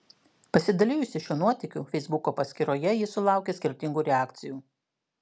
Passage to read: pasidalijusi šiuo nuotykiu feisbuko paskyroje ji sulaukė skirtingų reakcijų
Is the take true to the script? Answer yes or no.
yes